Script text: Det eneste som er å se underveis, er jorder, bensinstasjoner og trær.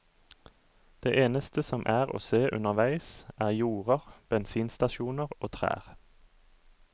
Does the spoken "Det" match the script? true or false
true